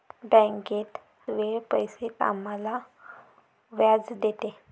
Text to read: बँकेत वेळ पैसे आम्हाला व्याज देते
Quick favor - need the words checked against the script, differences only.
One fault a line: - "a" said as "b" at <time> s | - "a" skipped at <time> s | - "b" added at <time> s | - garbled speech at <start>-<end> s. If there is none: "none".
none